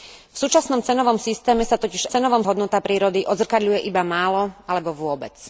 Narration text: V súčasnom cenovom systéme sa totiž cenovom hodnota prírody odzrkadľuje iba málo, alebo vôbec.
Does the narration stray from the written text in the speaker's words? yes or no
no